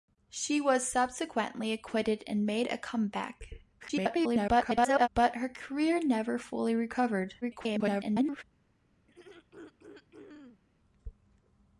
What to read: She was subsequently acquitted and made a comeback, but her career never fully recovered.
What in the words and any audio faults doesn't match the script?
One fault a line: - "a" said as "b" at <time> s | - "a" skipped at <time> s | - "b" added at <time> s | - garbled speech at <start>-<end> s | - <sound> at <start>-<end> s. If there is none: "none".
- garbled speech at 3.8-5.1 s
- garbled speech at 7.4-8.4 s
- throat clearing at 9.1-10.6 s